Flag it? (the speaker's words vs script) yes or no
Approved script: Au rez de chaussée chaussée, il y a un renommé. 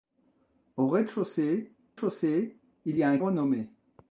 no